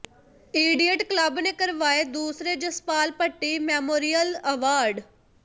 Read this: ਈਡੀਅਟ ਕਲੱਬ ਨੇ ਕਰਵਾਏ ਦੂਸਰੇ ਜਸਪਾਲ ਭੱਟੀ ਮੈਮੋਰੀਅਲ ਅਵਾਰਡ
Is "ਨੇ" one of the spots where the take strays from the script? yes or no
no